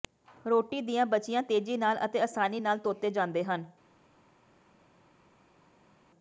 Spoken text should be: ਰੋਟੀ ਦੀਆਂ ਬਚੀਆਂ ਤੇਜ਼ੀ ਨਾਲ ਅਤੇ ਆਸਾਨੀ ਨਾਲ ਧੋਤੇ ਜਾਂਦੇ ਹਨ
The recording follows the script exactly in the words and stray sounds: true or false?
true